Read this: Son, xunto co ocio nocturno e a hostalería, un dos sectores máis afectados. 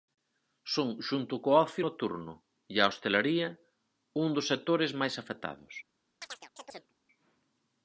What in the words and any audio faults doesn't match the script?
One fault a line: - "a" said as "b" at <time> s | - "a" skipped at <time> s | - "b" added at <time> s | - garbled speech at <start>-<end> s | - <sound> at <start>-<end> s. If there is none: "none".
- chirp at 6.2-6.9 s